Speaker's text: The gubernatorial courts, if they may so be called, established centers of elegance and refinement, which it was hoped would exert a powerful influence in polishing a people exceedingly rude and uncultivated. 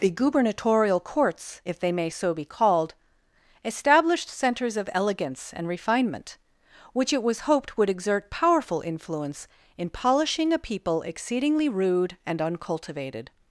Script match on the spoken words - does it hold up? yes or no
no